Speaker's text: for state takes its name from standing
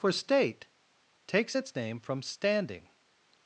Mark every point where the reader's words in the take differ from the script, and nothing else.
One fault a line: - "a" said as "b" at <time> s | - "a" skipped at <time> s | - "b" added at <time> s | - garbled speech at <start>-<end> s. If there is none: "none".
none